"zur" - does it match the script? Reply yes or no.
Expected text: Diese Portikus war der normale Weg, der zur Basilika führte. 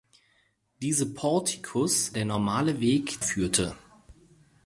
no